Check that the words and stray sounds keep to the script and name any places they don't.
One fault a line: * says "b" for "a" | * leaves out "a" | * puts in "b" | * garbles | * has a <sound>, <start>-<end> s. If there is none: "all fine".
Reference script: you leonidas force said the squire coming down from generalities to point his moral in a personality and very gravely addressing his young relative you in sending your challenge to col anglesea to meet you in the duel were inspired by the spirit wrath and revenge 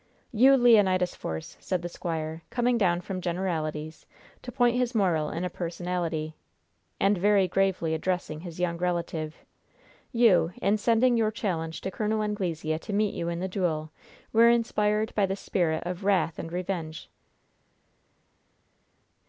* puts in "of"